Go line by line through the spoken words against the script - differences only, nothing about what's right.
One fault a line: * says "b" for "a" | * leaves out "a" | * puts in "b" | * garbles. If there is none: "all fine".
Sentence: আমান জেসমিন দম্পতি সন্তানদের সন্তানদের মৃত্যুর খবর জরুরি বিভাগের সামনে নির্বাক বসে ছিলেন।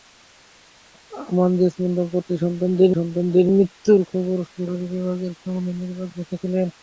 all fine